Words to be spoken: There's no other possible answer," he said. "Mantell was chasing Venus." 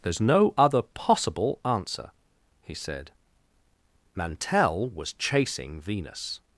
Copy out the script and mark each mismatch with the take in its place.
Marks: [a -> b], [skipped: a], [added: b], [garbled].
There's no other possible answer," he said. "Mantell was chasing Venus."